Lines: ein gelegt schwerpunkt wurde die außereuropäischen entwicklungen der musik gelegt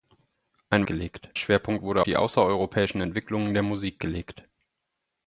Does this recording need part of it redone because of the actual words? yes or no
no